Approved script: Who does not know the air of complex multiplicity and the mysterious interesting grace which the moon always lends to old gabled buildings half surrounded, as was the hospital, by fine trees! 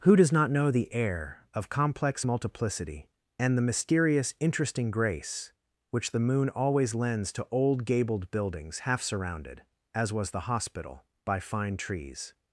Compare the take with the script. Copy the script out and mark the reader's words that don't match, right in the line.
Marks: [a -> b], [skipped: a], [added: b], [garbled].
Who does not know the air of complex multiplicity and the mysterious interesting grace which the moon always lends to old gabled buildings half surrounded, as was the hospital, by fine trees!